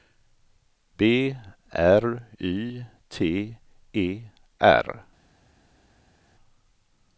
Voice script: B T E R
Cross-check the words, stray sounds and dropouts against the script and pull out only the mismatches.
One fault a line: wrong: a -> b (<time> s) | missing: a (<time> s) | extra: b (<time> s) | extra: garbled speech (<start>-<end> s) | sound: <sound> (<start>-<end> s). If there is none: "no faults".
extra: R Y (1.7 s)